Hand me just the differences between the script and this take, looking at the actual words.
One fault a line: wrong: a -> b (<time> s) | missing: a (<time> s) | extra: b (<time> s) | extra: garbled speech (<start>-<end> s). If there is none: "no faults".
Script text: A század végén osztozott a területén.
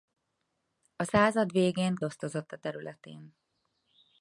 no faults